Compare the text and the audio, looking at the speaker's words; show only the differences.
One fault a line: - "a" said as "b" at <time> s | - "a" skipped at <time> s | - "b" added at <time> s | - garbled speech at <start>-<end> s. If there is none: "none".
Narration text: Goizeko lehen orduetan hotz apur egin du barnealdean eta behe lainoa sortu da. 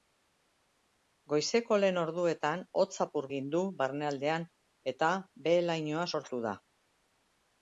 none